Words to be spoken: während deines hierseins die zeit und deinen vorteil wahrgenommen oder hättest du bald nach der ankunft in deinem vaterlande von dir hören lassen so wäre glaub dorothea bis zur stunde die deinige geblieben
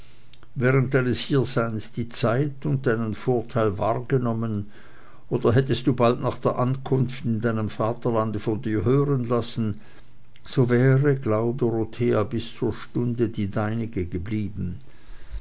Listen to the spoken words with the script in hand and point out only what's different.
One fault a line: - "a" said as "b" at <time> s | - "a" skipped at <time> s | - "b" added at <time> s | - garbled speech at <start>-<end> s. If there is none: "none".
none